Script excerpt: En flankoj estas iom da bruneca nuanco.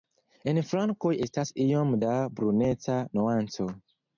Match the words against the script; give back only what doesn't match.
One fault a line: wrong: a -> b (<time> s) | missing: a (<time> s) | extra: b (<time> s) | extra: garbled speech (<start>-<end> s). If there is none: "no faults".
no faults